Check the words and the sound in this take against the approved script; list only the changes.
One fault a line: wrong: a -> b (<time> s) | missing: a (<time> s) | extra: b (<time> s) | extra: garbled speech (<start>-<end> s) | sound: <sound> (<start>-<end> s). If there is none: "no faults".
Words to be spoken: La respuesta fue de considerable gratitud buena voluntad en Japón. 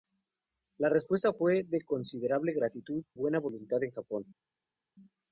no faults